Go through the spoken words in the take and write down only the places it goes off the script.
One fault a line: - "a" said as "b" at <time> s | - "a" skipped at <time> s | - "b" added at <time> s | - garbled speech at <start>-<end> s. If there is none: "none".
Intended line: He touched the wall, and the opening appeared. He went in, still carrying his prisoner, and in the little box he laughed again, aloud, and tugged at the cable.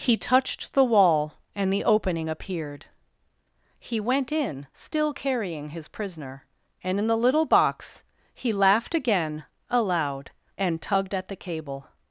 none